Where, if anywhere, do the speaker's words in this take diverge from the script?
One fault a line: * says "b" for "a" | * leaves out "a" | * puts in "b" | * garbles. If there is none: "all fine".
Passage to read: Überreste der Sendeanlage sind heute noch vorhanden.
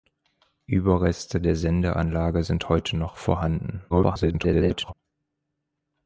* garbles